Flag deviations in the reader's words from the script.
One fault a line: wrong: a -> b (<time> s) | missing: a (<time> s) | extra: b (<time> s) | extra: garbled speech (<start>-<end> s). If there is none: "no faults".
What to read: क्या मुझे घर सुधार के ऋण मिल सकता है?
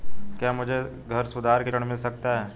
no faults